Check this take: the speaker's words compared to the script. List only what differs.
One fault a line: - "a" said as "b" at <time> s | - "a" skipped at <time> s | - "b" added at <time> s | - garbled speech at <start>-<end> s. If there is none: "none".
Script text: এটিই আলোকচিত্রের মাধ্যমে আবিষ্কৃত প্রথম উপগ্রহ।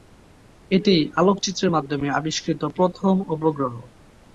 none